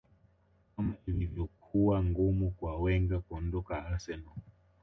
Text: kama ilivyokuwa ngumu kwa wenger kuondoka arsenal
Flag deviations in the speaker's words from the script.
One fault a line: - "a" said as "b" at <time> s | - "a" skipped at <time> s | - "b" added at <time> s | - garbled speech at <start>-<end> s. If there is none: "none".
none